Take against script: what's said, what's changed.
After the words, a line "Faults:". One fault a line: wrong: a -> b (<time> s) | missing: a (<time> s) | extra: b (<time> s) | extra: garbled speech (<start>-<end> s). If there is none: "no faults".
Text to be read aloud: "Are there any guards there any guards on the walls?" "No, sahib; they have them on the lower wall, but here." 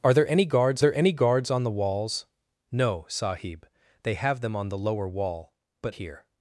"Are there any guards there any guards on the walls?" "No, sahib; they have them on the lower wall, but here."
Faults:
no faults